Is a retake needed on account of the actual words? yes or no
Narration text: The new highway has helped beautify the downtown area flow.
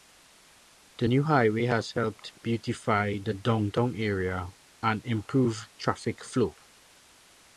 yes